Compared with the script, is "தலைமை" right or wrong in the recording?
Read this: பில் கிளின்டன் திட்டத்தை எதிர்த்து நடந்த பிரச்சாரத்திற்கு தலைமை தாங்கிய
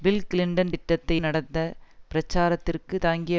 wrong